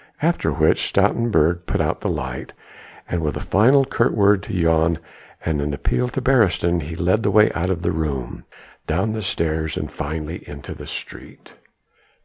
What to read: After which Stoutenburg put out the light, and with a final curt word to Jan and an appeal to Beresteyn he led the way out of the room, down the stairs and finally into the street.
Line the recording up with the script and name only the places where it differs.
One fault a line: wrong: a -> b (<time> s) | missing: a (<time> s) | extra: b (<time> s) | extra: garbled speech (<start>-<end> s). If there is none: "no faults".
no faults